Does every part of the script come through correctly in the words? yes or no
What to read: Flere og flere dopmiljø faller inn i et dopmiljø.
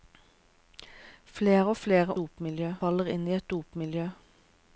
yes